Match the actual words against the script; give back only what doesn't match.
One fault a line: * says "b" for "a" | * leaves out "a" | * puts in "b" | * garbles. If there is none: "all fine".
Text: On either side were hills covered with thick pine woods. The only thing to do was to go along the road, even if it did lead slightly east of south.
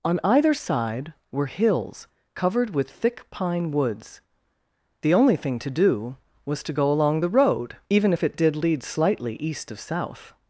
all fine